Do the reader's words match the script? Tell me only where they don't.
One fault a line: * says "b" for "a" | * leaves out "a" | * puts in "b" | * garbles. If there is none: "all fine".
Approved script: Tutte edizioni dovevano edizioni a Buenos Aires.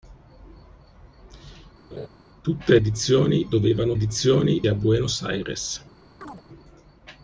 all fine